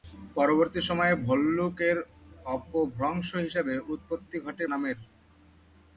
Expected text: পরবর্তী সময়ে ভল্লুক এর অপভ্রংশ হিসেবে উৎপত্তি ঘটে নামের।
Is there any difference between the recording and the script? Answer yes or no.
no